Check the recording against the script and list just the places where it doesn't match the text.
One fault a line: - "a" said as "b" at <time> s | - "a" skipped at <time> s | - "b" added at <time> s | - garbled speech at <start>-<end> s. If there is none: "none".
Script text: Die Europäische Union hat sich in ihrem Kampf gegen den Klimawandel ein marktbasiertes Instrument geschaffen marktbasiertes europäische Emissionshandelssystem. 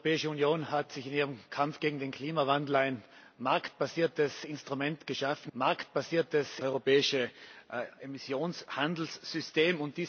none